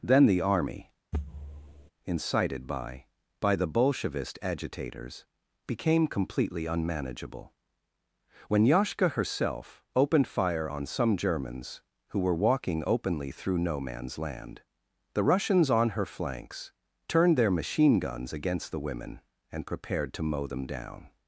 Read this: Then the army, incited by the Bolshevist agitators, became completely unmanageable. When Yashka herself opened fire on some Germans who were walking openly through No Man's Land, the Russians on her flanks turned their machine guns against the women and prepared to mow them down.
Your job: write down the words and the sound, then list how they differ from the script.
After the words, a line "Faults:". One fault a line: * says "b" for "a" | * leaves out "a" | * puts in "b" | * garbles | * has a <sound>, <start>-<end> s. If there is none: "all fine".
Then the army, incited by by the Bolshevist agitators, became completely unmanageable. When Yashka herself opened fire on some Germans who were walking openly through No Man's Land, the Russians on her flanks turned their machine guns against the women and prepared to mow them down.
Faults:
* has a thud, 1.1-1.9 s
* puts in "by"